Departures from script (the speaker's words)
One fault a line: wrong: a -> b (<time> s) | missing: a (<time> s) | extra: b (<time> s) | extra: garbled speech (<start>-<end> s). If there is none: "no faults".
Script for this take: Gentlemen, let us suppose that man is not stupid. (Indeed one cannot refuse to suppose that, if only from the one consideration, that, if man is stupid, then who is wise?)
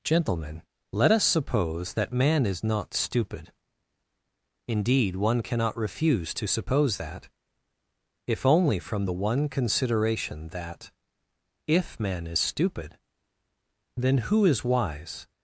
no faults